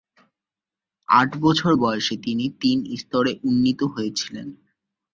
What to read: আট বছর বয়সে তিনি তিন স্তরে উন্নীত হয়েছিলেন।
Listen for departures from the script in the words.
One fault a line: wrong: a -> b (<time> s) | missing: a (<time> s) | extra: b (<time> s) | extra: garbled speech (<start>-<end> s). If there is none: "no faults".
no faults